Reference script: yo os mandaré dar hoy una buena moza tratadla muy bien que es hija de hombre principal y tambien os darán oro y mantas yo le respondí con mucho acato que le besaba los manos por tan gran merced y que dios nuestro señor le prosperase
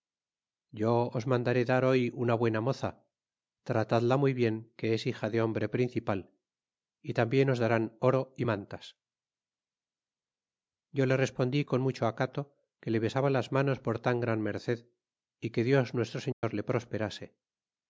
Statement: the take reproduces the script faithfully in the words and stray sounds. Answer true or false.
false